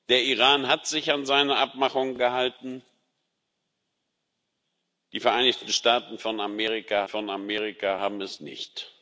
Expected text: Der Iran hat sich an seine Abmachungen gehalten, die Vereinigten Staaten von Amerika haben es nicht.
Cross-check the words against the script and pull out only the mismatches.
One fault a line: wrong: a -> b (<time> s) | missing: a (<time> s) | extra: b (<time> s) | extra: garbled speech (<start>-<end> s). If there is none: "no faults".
extra: von Amerika (7.1 s)